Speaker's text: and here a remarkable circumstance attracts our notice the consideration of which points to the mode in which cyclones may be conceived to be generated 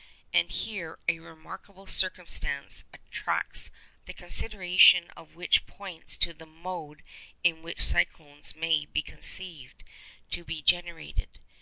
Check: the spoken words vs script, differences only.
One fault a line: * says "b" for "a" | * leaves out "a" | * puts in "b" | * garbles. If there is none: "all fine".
* leaves out "our notice"